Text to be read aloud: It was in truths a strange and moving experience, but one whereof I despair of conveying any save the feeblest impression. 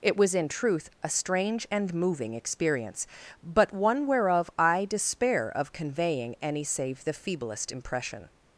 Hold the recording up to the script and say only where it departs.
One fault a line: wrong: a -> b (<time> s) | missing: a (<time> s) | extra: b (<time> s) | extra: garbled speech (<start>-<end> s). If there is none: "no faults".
wrong: truths -> truth (0.5 s)